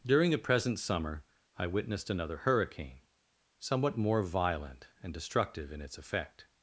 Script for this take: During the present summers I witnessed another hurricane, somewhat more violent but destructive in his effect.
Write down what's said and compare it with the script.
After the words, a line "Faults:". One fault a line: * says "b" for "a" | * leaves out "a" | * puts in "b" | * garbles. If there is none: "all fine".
During the present summer I witnessed another hurricane, somewhat more violent and destructive in its effect.
Faults:
* says "summer" for "summers"
* says "and" for "but"
* says "its" for "his"